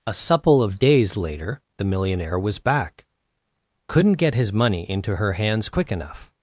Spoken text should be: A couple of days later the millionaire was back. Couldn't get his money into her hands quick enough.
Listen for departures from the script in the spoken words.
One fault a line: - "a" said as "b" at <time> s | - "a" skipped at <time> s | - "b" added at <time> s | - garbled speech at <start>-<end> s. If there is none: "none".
- "couple" said as "supple" at 0.1 s